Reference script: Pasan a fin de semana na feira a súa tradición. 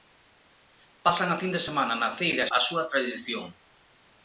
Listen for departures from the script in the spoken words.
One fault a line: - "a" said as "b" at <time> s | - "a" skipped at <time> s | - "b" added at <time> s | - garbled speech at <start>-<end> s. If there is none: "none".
none